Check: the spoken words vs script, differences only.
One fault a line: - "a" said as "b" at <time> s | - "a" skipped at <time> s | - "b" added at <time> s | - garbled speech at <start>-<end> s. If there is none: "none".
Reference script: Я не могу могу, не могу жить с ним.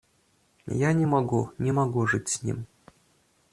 - "могу" skipped at 1.5 s